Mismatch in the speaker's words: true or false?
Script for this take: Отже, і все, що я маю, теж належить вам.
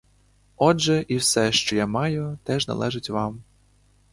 false